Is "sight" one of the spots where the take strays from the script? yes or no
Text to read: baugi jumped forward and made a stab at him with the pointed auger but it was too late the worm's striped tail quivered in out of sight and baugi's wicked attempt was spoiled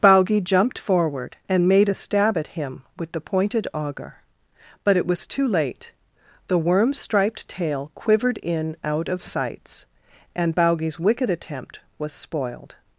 yes